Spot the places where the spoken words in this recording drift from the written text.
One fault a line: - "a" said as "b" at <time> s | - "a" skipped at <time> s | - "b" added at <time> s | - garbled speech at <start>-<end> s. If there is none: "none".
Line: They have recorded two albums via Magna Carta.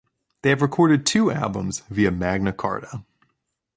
none